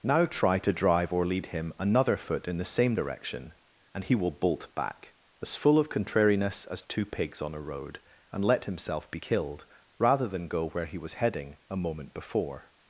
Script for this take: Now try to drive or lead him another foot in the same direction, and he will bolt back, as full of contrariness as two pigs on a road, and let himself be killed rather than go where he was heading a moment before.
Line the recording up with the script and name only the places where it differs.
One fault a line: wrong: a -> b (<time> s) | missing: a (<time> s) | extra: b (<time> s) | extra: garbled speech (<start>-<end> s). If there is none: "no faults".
no faults